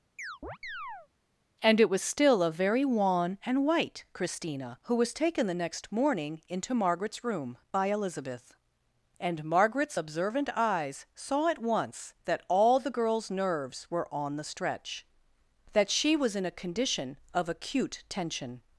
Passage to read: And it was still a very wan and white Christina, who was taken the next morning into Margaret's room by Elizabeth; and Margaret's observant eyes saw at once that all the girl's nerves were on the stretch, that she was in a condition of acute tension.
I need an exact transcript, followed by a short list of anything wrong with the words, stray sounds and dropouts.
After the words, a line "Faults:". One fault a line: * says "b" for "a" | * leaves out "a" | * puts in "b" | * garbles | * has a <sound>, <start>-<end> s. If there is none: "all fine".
And it was still a very wan and white Christina, who was taken the next morning into Margaret's room by Elizabeth; and Margaret's observant eyes saw at once that all the girl's nerves were on the stretch, that she was in a condition of acute tension.
Faults:
* has a chirp, 0.2-1.1 s